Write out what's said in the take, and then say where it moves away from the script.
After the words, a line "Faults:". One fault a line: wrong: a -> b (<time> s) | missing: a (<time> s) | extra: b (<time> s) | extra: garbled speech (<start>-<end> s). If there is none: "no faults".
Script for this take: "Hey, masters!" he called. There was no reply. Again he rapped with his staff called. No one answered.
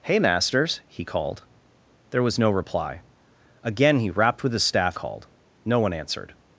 "Hey, masters!" he called. There was no reply. Again he rapped with his staff called. No one answered.
Faults:
no faults